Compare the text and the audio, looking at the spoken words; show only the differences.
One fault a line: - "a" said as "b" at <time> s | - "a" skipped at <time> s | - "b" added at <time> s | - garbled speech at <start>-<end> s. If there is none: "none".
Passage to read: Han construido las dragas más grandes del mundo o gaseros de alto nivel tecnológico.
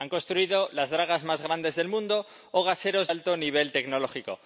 - "de" skipped at 3.1 s